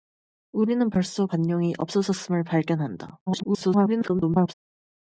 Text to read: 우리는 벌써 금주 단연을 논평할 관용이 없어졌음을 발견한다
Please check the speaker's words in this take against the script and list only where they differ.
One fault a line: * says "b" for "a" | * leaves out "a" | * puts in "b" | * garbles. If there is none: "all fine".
* leaves out "금주 단연을 논평할"
* garbles